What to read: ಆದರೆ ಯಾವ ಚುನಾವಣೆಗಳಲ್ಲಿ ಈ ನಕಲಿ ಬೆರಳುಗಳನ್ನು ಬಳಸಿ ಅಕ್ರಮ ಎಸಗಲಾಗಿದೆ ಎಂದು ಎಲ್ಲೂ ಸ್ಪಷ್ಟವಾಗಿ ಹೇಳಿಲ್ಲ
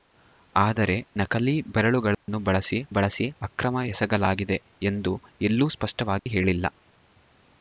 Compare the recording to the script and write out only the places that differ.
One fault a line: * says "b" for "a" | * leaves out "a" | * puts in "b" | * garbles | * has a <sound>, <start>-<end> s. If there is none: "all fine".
* leaves out "ಯಾವ ಚುನಾವಣೆಗಳಲ್ಲಿ ಈ"
* has a dropout, 2.1-2.3 s
* puts in "ಬಳಸಿ"
* has a dropout, 6.2-6.3 s